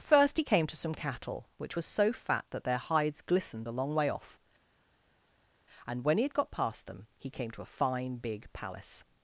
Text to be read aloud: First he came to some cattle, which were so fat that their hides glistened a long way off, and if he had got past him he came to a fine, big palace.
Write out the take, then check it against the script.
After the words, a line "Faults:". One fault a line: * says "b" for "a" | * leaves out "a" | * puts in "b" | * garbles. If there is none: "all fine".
First he came to some cattle, which were so fat that their hides glistened a long way off, and when he had got past them he came to a fine, big palace.
Faults:
* says "when" for "if"
* says "them" for "him"